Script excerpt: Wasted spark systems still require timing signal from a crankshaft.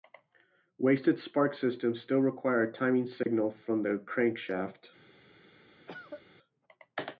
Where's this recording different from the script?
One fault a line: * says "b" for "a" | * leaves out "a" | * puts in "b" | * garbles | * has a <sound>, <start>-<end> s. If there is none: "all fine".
* puts in "a"
* has a dropout, 3.2-3.3 s
* says "the" for "a"
* has a cough, 5.9-6.2 s